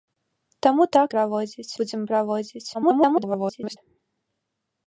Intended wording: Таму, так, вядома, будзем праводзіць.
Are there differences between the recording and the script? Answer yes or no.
yes